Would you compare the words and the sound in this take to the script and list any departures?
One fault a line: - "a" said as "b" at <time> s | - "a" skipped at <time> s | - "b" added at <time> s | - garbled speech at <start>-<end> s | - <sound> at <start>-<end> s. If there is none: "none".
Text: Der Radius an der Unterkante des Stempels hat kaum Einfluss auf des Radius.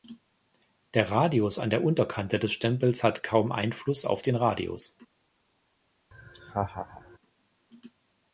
- "des" said as "den" at 4.2 s
- laugh at 6.1-7.2 s